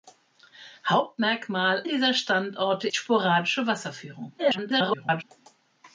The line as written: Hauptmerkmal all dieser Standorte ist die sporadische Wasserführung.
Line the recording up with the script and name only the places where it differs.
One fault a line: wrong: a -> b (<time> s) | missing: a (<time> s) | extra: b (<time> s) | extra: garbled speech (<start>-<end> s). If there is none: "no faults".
missing: all (1.8 s)
missing: ist (2.9 s)
extra: garbled speech (4.4-5.2 s)